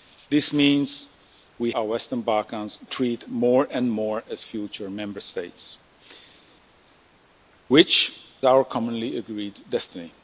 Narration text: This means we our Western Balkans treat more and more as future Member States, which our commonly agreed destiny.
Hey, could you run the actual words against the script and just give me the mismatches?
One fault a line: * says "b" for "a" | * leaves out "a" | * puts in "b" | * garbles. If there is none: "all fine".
all fine